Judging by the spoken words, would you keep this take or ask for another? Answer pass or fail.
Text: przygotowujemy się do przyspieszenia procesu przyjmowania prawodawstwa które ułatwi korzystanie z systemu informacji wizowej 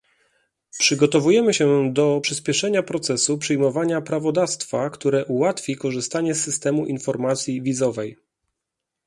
pass